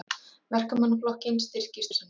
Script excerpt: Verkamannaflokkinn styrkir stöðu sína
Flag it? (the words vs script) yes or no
yes